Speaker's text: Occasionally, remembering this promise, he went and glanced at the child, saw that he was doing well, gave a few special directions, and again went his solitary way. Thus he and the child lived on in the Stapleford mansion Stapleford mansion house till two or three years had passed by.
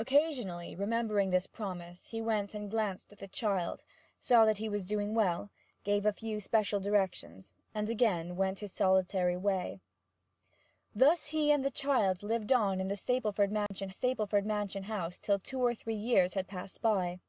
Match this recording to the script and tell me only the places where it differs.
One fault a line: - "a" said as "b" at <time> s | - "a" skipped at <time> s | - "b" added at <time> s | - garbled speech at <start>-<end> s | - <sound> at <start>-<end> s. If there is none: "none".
- dropout at 13.7-13.7 s